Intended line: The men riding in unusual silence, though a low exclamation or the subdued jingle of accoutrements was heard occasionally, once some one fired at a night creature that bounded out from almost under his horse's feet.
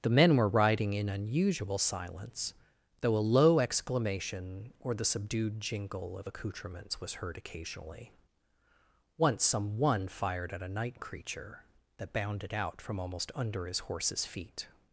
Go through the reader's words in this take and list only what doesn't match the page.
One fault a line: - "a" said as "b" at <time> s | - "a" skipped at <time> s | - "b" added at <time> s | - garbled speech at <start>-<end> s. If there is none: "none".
- "were" added at 0.3 s